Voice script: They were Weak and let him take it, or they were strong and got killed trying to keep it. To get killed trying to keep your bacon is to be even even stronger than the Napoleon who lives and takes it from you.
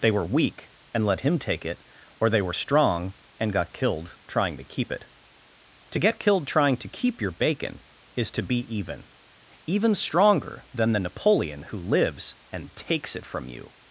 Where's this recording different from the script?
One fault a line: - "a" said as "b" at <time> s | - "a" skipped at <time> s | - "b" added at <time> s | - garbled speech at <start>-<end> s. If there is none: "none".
none